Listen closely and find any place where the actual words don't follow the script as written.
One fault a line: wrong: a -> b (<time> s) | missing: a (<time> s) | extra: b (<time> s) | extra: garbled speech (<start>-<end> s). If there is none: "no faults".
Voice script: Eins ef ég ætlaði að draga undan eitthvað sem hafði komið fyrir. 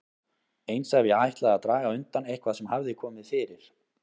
no faults